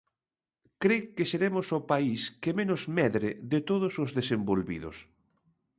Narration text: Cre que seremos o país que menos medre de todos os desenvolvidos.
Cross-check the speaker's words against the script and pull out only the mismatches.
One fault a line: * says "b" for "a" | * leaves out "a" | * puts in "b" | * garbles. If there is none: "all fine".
all fine